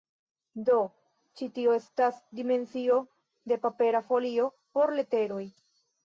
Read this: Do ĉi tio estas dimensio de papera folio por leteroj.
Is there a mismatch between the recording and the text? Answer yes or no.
no